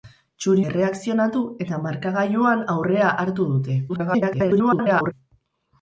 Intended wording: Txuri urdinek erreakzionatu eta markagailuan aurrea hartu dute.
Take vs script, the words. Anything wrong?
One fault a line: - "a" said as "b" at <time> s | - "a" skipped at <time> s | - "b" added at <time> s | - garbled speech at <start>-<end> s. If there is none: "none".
- "urdinek" skipped at 0.6 s
- garbled speech at 3.9-5.1 s